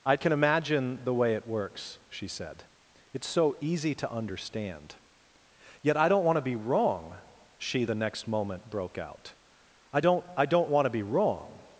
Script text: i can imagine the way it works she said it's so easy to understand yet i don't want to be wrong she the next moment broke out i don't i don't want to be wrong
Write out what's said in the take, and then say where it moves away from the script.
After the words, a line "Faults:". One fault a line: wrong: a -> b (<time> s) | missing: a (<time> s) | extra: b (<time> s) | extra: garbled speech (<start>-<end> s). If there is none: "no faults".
i can imagine the way it works she said it's so easy to understand yet i don't want to be wrong she the next moment broke out i don't i don't want to be wrong
Faults:
no faults